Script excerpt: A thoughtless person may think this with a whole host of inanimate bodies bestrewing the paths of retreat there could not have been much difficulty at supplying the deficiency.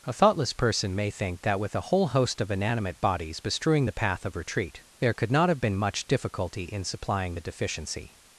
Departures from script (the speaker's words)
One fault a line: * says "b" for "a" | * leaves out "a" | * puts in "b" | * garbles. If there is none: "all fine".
* says "that" for "this"
* says "path" for "paths"
* says "in" for "at"